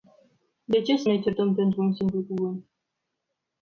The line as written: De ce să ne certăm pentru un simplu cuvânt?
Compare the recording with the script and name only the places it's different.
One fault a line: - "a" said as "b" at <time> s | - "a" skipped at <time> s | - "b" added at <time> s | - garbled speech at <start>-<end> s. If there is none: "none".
none